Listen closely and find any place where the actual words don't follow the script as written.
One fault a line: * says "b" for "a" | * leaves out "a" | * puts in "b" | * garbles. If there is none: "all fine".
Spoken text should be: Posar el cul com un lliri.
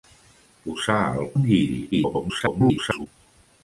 * leaves out "cul com"
* garbles